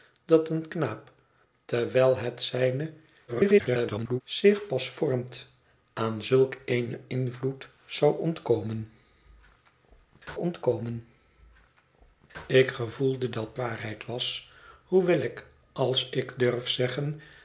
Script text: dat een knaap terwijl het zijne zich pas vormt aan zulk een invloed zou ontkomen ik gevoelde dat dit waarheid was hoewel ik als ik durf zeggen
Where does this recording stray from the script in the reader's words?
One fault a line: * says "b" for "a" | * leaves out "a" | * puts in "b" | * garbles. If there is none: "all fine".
* garbles
* puts in "ontkomen"
* leaves out "dit"